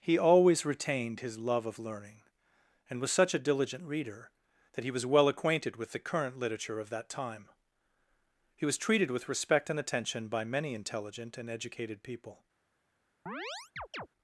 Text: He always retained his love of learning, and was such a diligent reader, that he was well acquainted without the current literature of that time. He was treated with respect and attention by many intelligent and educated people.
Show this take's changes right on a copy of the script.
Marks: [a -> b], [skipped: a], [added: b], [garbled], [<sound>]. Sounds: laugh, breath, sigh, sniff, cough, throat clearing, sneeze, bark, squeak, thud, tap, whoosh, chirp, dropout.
He always retained his love of learning, and was such a diligent reader, that he was well acquainted [without -> with] the current literature of that time. He was treated with respect and attention by many intelligent and educated people. [chirp]